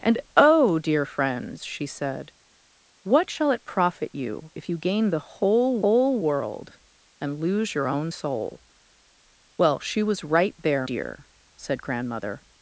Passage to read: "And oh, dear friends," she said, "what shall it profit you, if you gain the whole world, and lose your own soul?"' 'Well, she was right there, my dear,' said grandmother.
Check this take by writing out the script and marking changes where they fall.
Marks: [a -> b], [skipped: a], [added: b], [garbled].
"And oh, dear friends," she said, "what shall it profit you, if you gain the whole [added: whole] world, and lose your own soul?"' 'Well, she was right there, [skipped: my] dear,' said grandmother.